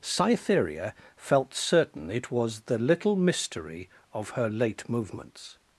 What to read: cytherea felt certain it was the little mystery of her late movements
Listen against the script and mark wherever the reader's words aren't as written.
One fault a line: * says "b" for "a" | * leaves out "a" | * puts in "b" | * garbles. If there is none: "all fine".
all fine